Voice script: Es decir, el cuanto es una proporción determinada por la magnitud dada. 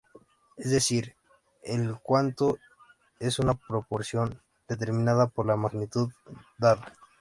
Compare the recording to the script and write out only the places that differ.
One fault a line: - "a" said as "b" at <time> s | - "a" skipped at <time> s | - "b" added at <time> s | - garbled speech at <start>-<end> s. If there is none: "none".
none